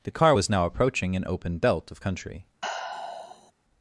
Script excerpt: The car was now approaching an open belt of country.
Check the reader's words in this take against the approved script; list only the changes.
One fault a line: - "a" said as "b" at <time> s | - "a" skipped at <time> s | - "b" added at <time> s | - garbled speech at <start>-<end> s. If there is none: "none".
none